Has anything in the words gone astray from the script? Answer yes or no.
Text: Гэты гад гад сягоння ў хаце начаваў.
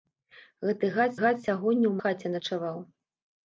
no